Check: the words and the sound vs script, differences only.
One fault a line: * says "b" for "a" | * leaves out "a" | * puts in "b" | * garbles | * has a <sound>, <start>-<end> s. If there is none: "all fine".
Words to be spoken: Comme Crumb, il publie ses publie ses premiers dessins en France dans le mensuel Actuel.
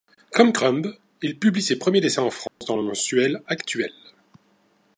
* leaves out "publie ses"
* has a dropout, 2.5-2.6 s